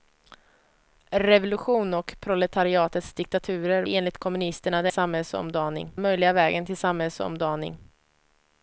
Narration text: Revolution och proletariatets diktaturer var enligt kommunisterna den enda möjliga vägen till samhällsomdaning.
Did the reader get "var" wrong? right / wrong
wrong